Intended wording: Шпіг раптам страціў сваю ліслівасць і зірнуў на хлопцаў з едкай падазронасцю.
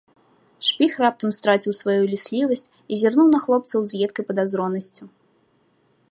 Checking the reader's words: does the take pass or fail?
pass